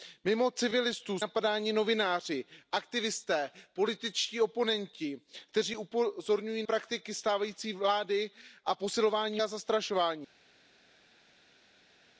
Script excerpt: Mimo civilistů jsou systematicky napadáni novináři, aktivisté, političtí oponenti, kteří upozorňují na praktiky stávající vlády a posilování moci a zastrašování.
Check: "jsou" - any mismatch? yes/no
yes